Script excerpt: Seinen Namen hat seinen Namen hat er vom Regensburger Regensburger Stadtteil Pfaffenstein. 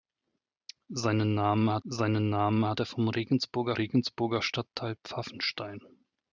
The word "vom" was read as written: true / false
true